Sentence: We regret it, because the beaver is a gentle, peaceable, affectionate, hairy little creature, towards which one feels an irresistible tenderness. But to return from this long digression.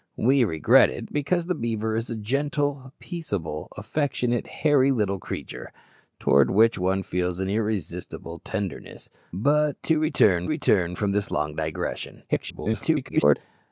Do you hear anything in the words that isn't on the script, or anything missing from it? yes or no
yes